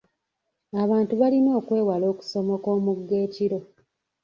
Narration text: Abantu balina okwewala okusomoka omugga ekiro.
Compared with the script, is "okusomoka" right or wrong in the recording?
right